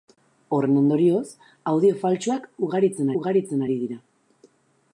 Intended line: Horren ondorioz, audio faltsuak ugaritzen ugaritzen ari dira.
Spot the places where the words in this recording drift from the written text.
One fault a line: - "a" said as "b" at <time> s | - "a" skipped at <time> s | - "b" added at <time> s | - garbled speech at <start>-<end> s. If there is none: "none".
none